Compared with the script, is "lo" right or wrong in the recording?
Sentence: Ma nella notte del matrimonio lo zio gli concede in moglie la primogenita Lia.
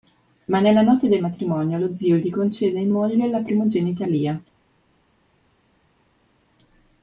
right